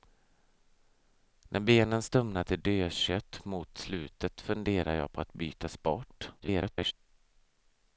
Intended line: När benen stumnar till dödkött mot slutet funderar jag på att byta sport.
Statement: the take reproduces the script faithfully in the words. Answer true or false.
false